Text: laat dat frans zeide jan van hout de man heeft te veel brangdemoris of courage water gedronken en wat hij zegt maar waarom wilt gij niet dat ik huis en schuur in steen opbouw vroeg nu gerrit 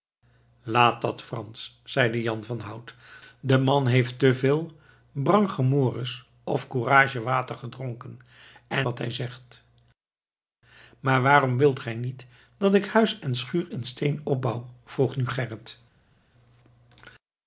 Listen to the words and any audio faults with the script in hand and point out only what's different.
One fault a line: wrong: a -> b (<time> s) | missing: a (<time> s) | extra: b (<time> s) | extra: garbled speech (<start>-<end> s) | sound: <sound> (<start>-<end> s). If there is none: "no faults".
no faults